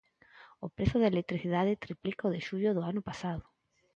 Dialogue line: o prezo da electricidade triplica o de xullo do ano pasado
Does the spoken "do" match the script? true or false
true